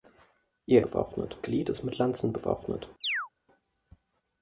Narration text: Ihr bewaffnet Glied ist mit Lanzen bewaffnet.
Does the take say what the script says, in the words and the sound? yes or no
no